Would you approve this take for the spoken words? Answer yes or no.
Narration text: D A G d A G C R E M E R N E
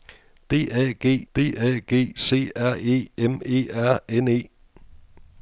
yes